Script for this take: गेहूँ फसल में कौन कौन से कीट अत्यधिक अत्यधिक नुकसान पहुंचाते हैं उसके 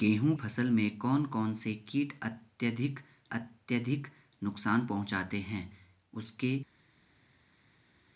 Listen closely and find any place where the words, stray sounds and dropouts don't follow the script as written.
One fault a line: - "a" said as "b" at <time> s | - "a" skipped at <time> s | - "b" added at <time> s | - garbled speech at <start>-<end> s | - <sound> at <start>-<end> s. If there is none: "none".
none